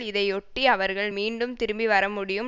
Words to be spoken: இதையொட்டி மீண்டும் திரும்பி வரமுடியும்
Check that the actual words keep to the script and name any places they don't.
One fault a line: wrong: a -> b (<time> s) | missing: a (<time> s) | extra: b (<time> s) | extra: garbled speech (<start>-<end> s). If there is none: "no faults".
extra: அவர்கள் (0.7 s)